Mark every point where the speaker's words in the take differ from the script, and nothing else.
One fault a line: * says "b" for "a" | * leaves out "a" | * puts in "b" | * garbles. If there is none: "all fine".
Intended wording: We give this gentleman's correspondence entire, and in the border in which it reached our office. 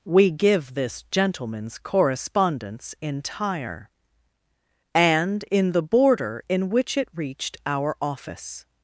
all fine